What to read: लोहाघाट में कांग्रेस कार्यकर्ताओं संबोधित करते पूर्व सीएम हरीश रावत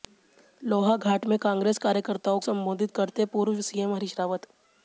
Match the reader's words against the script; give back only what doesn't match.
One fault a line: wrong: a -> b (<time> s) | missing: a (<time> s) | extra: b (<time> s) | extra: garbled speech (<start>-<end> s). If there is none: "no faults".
no faults